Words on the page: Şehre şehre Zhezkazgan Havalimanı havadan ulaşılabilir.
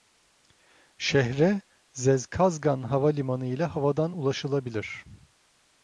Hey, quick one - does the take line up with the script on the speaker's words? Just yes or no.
no